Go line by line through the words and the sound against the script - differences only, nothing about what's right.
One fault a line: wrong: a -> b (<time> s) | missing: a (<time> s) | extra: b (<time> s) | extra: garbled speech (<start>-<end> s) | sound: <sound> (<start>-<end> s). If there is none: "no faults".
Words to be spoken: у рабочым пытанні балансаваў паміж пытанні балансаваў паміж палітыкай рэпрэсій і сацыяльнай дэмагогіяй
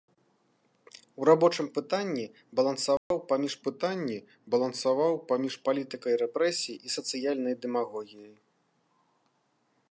sound: dropout (3.0-3.1 s)